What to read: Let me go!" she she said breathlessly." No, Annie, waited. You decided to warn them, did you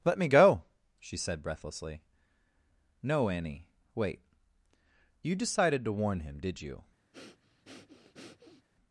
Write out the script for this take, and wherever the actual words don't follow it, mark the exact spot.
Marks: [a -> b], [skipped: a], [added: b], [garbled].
Let me go!" she [skipped: she] said breathlessly." No, Annie, [waited. -> wait] You decided to warn [them, -> him] did you